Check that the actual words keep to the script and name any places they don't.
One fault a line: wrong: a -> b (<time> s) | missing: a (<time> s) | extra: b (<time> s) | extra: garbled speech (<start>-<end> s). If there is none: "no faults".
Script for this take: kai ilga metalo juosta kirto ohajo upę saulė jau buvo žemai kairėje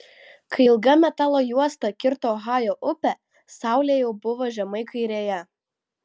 no faults